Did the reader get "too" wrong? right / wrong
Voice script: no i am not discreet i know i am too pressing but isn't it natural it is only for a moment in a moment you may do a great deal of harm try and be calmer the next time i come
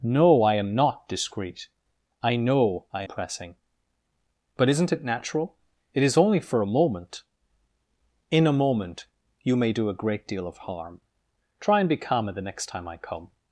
wrong